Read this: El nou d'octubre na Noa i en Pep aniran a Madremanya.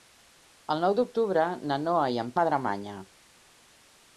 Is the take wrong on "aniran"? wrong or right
wrong